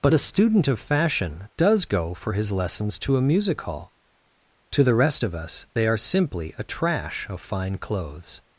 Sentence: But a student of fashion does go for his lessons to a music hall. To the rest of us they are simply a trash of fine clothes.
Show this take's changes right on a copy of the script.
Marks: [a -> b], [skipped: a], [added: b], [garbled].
But a student of fashion does go for his lessons to a music hall. To the rest of us they are simply a trash of fine clothes.